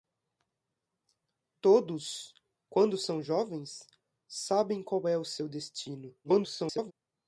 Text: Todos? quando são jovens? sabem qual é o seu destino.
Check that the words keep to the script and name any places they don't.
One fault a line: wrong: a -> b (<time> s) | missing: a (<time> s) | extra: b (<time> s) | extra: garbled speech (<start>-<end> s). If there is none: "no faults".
extra: garbled speech (6.2-6.9 s)